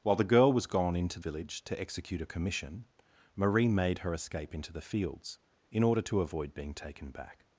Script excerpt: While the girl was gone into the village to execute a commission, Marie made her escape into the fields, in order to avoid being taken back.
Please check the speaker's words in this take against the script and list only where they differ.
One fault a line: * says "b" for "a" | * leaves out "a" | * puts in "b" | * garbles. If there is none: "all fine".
* leaves out "the"